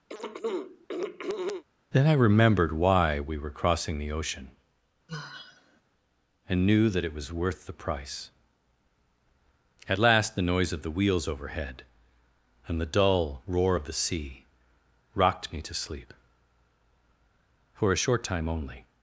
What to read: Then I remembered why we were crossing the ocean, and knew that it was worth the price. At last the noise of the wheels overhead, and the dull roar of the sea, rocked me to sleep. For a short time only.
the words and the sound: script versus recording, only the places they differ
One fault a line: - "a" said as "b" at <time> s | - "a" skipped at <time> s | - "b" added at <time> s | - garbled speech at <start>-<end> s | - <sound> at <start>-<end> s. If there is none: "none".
- throat clearing at 0.1-1.6 s
- sigh at 5.1-5.8 s